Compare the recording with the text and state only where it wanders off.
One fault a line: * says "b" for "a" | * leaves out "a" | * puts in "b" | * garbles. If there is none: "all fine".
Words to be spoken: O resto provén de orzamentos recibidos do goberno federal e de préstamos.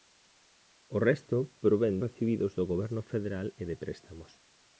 * leaves out "de orzamentos"